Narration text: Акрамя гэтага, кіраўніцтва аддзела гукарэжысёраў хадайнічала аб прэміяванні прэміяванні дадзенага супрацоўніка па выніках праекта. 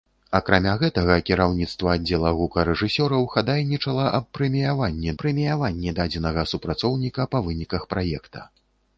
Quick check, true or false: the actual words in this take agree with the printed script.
true